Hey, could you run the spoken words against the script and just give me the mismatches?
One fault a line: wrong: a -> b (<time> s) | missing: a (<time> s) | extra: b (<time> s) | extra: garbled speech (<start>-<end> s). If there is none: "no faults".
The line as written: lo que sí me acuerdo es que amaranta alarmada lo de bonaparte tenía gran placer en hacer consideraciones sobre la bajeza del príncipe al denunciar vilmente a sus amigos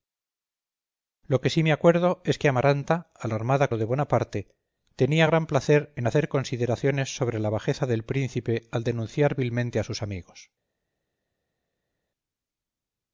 no faults